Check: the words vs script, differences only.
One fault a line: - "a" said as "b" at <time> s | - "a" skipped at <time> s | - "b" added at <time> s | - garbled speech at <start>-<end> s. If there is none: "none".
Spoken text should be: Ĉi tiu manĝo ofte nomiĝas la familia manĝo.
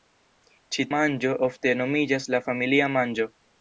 - "tiu" skipped at 0.8 s